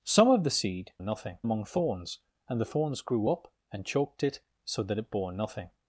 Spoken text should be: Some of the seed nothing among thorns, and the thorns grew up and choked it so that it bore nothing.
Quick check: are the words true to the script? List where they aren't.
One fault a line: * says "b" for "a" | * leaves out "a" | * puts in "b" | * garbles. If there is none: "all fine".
all fine